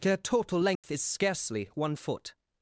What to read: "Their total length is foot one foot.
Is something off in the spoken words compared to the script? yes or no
yes